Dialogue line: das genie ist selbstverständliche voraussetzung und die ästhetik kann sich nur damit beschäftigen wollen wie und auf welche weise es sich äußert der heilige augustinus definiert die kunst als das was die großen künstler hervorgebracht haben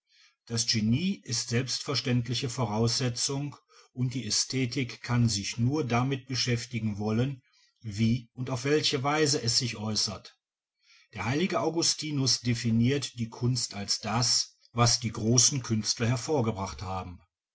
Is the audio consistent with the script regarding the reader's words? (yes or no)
yes